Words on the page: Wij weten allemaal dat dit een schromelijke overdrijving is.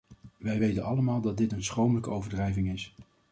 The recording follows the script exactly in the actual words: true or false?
true